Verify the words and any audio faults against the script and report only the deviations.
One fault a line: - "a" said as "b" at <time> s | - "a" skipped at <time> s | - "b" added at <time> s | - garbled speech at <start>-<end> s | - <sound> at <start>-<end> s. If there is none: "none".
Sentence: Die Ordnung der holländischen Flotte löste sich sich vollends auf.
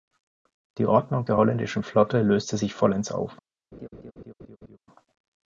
- "sich" skipped at 2.7 s
- laugh at 3.7-4.8 s